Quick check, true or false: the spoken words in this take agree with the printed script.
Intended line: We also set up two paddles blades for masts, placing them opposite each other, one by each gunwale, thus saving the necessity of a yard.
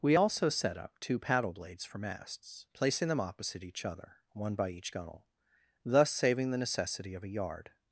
false